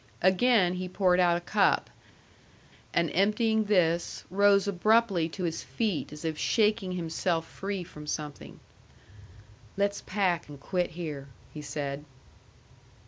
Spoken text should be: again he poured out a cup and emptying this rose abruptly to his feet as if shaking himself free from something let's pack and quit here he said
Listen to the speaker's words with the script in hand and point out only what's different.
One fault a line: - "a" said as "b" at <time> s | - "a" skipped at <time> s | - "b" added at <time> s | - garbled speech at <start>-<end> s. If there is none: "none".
none